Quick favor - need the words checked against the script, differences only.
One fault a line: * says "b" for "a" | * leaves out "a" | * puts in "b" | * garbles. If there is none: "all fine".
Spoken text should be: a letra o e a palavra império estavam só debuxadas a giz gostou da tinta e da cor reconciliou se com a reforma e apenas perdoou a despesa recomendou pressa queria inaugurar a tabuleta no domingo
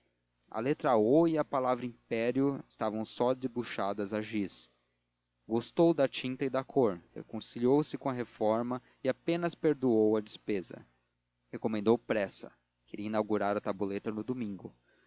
all fine